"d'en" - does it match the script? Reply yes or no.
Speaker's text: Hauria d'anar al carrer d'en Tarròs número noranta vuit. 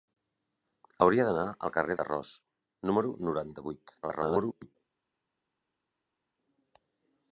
no